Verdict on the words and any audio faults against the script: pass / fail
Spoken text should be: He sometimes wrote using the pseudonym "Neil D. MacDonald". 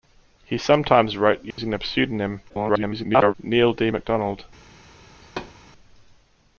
fail